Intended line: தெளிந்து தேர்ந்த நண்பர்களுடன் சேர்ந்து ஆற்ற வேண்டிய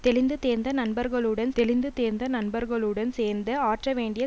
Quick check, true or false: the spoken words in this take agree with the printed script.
false